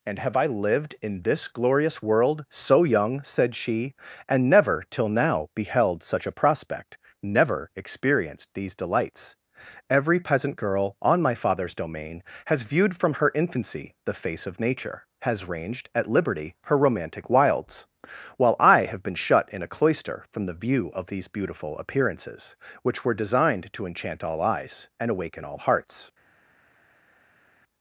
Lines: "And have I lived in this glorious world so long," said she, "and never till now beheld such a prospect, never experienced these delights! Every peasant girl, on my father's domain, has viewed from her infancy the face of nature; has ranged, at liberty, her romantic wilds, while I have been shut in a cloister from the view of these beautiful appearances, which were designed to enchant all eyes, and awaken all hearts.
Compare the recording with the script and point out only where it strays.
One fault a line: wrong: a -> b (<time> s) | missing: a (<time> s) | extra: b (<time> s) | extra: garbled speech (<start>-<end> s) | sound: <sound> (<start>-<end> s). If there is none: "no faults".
wrong: long -> young (2.8 s)